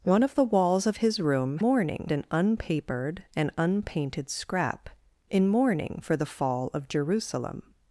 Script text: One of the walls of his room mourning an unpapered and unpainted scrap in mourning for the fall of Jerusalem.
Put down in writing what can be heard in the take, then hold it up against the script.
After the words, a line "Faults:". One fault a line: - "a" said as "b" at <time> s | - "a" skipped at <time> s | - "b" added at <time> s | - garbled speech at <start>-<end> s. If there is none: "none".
One of the walls of his room mourning an unpapered and unpainted scrap in mourning for the fall of Jerusalem.
Faults:
none